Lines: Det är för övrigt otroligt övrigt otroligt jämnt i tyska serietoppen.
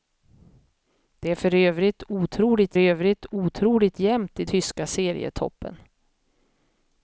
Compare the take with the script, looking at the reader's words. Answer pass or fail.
pass